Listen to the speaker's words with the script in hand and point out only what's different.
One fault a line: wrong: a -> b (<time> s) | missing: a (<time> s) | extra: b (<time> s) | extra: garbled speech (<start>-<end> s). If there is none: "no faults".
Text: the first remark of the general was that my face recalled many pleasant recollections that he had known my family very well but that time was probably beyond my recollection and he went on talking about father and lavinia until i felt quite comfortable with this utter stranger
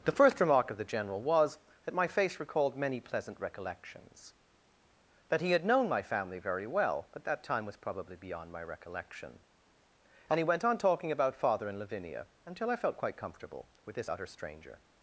no faults